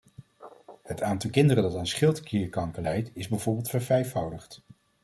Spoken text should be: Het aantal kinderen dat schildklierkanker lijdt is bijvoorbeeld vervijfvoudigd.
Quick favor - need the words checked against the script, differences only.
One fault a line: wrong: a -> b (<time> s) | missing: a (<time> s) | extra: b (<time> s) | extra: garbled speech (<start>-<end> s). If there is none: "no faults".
extra: aan (1.8 s)